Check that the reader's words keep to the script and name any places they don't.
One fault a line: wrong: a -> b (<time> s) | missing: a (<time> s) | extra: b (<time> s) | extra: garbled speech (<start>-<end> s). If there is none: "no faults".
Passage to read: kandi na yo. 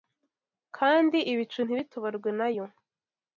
extra: ibicu ntibitoborwe (1.3 s)